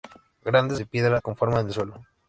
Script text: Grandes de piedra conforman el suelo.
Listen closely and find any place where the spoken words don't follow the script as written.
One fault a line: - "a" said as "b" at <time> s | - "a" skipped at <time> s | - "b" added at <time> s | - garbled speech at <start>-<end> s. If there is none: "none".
none